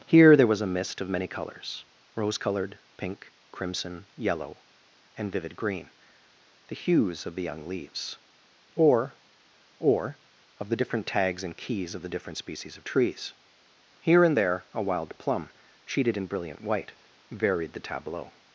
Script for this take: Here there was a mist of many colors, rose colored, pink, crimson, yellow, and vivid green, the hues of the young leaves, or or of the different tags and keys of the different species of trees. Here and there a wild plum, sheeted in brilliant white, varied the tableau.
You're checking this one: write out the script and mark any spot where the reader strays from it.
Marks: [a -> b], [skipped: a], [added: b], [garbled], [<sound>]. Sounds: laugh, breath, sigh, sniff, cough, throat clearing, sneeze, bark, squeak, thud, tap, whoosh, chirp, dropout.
Here there was a mist of many colors, rose colored, pink, crimson, yellow, and vivid green, the hues of the young leaves, or or of the different tags and keys of the different species of trees. Here and there a wild plum, sheeted in brilliant white, varied the tableau.